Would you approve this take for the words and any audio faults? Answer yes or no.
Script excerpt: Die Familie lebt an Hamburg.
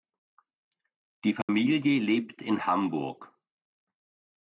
no